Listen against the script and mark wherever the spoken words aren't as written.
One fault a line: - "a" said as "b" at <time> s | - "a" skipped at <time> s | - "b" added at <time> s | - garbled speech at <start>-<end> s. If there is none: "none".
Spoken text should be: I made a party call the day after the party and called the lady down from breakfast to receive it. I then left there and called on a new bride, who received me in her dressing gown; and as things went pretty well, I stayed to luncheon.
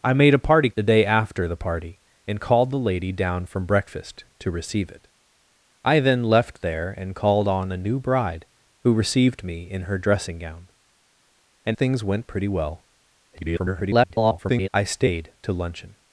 - "call" skipped at 0.7 s
- "as" skipped at 11.8 s
- garbled speech at 13.3-14.7 s